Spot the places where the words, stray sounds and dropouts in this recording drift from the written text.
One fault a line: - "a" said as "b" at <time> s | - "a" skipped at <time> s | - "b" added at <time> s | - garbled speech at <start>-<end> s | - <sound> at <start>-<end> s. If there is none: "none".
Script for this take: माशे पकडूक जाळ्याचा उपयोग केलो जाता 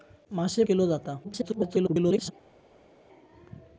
- "पकडूक जाळ्याचा उपयोग" skipped at 0.6 s
- garbled speech at 1.2-2.3 s